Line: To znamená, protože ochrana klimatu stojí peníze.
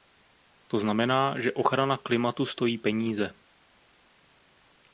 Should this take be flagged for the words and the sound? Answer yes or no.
yes